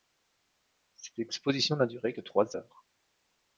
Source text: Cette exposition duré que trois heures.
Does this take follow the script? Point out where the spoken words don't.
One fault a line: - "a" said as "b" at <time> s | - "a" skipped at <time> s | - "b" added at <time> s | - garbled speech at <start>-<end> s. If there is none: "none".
- "n'a" added at 1.8 s